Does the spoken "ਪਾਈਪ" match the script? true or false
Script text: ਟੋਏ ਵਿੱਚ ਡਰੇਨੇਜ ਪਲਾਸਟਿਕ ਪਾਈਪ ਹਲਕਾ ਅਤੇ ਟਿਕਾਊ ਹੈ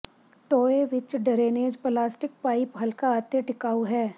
true